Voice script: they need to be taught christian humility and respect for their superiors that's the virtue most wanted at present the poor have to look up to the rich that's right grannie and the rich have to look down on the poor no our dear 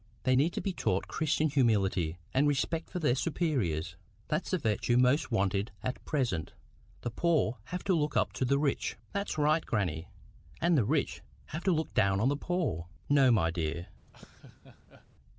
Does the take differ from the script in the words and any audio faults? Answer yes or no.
yes